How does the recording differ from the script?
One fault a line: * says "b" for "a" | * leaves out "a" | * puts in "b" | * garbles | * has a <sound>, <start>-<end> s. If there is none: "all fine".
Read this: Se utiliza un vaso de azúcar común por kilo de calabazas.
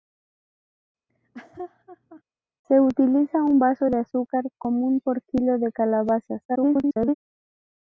* has a laugh, 1.1-2.2 s
* garbles